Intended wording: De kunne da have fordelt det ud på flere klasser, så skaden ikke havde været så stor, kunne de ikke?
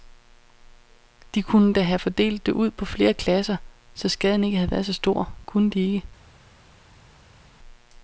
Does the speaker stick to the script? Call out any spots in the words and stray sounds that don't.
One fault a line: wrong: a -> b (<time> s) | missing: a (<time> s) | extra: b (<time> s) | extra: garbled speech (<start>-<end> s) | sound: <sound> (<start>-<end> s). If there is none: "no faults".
no faults